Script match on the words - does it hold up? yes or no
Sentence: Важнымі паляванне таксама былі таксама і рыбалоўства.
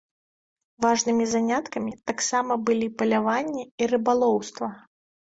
no